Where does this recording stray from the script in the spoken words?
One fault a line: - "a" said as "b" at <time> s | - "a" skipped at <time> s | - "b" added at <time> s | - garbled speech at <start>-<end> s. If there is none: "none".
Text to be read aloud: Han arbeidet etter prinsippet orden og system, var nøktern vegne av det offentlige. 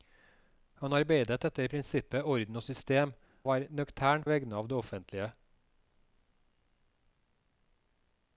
none